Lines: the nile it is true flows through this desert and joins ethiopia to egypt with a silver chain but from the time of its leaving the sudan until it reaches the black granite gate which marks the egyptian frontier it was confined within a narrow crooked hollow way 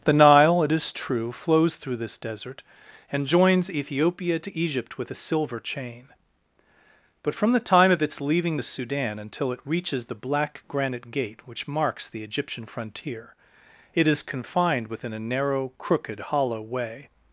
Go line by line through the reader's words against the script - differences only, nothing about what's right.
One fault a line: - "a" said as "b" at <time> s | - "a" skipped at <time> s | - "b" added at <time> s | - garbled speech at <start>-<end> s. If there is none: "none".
- "was" said as "is" at 14.1 s